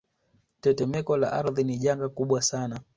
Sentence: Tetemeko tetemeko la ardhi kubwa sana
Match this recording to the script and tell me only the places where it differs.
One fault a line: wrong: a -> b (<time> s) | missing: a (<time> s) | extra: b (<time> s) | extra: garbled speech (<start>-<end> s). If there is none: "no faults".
missing: tetemeko (1.2 s)
extra: ni janga (1.6 s)